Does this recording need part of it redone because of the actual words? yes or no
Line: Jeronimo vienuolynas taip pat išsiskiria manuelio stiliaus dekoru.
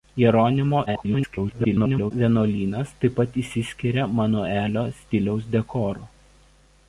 yes